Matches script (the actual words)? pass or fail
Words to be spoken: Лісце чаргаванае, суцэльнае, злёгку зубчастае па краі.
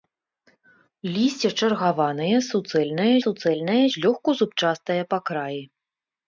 fail